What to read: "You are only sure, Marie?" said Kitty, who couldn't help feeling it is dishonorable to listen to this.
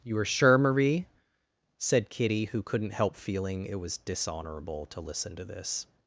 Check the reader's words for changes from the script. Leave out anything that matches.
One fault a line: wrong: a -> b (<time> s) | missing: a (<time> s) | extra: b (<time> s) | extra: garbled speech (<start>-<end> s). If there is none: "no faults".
missing: only (0.2 s)
wrong: is -> was (3.8 s)